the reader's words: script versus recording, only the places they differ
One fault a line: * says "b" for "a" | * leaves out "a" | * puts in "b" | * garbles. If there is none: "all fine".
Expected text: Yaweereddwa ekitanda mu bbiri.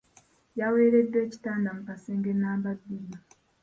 * puts in "kasenge nnamba"